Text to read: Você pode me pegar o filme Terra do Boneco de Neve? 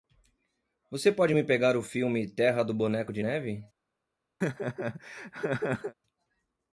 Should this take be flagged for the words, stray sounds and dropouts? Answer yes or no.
yes